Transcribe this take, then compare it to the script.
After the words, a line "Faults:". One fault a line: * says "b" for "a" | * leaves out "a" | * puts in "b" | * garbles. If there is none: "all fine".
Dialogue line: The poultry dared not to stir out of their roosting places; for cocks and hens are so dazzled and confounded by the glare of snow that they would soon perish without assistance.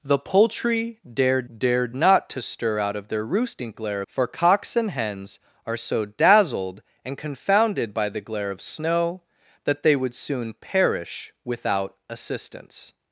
The poultry dared dared not to stir out of their roosting glare; for cocks and hens are so dazzled and confounded by the glare of snow that they would soon perish without assistance.
Faults:
* puts in "dared"
* says "glare" for "places"